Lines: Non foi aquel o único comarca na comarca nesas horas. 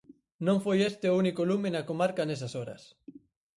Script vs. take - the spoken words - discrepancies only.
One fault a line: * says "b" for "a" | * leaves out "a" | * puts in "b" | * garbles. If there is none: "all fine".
* says "este" for "aquel"
* says "lume" for "comarca"